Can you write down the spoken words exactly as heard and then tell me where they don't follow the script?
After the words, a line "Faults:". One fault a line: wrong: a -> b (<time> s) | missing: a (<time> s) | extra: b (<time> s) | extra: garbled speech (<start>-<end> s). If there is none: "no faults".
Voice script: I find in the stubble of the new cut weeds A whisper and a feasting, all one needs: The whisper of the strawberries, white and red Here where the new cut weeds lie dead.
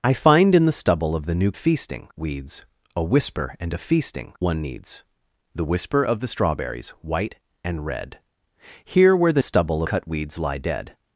I find in the stubble of the new feasting weeds A whisper and a feasting, one needs: The whisper of the strawberries, white and red Here where the stubble cut weeds lie dead.
Faults:
wrong: cut -> feasting (1.5 s)
missing: all (4.3 s)
wrong: new -> stubble (9.4 s)